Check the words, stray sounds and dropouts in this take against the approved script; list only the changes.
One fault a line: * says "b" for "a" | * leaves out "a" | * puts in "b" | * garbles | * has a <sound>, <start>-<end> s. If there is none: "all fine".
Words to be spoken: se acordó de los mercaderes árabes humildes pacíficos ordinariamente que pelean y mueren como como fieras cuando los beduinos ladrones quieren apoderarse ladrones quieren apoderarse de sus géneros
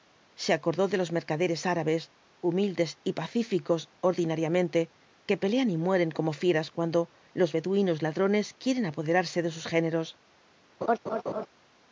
* puts in "y"
* leaves out "como"
* leaves out "ladrones quieren apoderarse"
* has a laugh, 10.8-11.5 s